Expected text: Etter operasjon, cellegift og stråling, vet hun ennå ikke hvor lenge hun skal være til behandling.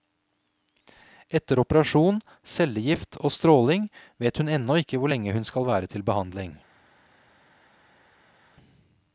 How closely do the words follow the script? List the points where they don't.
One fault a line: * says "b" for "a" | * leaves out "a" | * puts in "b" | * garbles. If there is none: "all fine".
all fine